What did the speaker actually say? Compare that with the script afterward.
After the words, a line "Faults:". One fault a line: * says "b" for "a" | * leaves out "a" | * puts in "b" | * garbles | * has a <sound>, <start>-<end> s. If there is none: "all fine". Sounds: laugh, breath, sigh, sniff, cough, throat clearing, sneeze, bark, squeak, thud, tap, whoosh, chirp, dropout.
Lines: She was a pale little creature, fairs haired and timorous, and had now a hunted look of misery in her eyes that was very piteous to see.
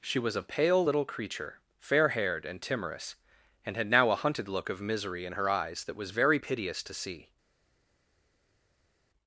She was a pale little creature, fair haired and timorous, and had now a hunted look of misery in her eyes that was very piteous to see.
Faults:
* says "fair" for "fairs"